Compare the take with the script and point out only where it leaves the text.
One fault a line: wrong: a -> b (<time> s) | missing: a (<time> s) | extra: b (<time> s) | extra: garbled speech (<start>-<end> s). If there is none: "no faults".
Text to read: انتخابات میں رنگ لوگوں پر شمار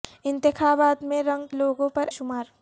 no faults